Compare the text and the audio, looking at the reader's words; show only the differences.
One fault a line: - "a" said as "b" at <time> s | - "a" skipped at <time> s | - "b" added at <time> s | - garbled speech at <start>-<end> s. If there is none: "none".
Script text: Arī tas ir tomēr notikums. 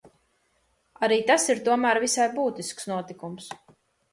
- "visai būtisks" added at 2.0 s